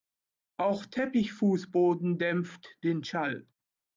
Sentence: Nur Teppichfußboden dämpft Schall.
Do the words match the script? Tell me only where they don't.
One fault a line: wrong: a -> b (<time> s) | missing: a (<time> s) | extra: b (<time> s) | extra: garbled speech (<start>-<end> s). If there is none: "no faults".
wrong: Nur -> Auch (0.6 s)
extra: den (2.8 s)